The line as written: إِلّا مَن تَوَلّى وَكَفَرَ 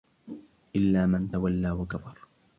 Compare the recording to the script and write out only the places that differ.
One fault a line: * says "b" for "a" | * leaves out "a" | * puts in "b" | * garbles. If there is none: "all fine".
all fine